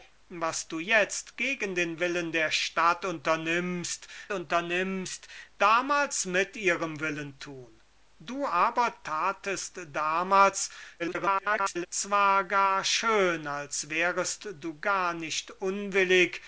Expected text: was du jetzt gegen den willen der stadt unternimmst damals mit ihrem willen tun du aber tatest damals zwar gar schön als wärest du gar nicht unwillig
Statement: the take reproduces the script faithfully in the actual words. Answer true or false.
false